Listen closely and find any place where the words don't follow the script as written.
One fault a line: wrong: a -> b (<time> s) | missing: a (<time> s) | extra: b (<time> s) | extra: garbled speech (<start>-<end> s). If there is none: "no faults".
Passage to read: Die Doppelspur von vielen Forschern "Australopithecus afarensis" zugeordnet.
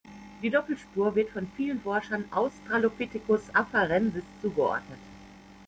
extra: wird (1.1 s)